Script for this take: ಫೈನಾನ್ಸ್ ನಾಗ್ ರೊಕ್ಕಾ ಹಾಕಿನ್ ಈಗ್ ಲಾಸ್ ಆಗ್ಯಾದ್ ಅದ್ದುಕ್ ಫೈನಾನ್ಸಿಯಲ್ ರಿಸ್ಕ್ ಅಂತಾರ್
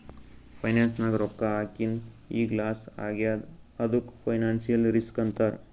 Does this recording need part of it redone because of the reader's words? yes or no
no